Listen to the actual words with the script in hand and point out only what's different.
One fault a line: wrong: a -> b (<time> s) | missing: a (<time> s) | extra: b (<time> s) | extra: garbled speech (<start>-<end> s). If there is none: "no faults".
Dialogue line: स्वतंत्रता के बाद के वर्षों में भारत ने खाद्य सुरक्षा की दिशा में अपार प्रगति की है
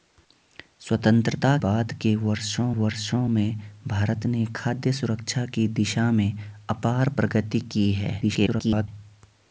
missing: के (1.6 s)
extra: वर्षों (2.7 s)
extra: garbled speech (8.2-8.9 s)